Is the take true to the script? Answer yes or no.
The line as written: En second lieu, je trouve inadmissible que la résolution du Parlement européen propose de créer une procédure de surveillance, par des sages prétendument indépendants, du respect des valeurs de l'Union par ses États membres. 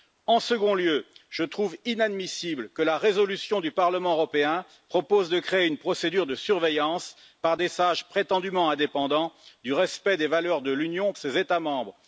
no